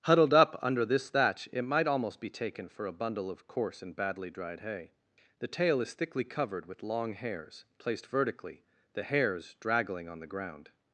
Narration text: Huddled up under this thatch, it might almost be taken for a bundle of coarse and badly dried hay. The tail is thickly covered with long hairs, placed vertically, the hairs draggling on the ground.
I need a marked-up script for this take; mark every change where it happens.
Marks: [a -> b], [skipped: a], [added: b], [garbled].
Huddled up under this thatch, it might almost be taken for a bundle of coarse and badly dried hay. The tail is thickly covered with long hairs, placed vertically, the hairs draggling on the ground.